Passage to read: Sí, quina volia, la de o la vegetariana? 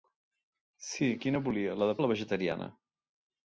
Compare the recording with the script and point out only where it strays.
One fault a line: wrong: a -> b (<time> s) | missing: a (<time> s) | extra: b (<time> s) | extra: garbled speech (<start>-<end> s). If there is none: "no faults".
no faults